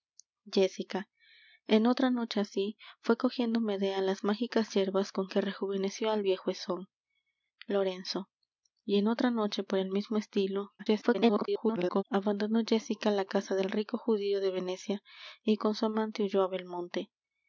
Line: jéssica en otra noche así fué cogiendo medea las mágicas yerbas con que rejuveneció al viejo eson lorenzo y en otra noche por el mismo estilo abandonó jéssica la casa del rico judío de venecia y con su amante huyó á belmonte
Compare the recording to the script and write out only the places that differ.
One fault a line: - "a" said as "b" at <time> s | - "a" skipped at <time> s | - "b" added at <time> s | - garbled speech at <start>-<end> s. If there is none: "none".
- garbled speech at 10.8-12.0 s